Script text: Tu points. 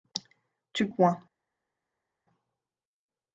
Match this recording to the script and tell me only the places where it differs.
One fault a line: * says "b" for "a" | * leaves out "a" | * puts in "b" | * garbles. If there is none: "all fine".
all fine